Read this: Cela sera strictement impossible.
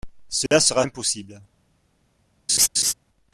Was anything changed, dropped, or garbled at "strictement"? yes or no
yes